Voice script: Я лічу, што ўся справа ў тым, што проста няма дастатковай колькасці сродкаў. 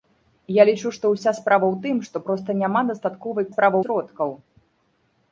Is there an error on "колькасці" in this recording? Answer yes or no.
yes